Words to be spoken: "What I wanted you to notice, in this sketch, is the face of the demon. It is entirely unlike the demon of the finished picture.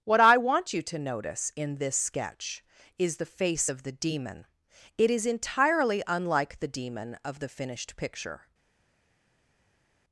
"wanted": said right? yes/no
no